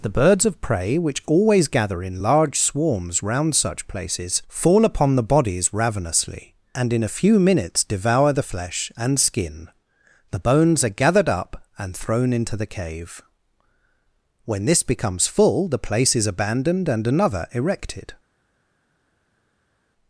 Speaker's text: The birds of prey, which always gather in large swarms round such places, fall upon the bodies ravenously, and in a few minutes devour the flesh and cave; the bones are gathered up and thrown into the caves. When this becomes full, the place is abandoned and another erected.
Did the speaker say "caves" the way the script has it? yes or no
no